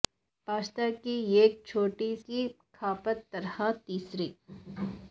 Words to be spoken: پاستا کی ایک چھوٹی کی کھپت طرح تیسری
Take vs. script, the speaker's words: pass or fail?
pass